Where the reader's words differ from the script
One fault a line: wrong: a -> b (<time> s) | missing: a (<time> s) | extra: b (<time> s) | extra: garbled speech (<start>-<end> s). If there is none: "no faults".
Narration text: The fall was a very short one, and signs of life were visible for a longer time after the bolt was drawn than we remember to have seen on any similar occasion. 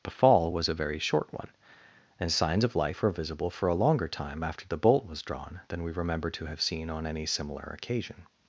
no faults